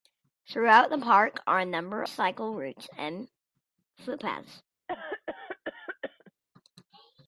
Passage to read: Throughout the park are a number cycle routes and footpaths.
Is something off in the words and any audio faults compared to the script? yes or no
yes